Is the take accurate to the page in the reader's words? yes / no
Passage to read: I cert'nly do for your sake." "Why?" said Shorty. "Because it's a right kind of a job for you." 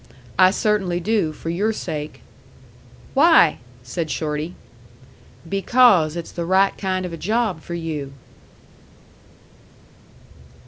no